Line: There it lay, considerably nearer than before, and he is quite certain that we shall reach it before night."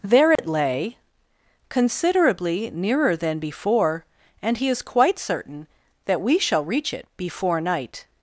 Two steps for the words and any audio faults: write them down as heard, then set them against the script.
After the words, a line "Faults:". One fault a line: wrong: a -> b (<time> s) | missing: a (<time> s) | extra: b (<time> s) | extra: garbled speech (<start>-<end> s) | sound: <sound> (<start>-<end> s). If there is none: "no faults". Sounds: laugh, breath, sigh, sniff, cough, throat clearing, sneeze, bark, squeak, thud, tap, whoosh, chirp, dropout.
There it lay, considerably nearer than before, and he is quite certain that we shall reach it before night."
Faults:
sound: dropout (0.4-0.4 s)